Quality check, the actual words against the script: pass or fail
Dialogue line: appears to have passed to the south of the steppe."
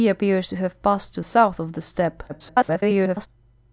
fail